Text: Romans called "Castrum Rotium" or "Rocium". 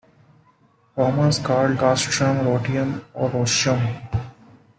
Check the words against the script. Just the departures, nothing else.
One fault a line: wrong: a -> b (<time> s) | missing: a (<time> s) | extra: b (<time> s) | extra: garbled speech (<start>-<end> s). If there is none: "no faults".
no faults